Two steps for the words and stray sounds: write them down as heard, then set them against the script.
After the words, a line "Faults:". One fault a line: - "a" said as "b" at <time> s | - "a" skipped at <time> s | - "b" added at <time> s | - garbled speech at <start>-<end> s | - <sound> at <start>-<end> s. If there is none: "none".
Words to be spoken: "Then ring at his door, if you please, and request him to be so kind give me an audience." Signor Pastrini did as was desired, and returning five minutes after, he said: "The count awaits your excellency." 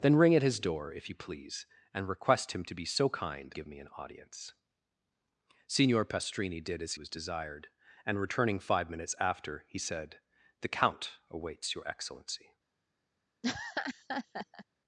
"Then ring at his door, if you please, and request him to be so kind give me an audience." Signor Pastrini did as was desired, and returning five minutes after, he said: "The count awaits your excellency."
Faults:
- laugh at 13.4-14.7 s